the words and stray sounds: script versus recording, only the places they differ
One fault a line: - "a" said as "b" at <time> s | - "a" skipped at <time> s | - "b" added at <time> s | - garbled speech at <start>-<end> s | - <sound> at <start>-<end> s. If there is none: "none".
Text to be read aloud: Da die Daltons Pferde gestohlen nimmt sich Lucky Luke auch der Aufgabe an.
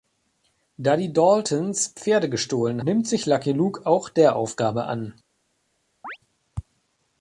- chirp at 6.0-6.2 s